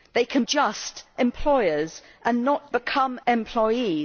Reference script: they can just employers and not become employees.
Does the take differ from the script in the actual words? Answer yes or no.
no